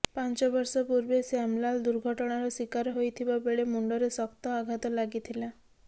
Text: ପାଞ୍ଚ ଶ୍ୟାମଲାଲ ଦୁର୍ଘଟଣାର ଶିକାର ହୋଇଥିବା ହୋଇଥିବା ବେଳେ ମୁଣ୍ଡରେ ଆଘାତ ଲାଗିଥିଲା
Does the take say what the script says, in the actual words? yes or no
no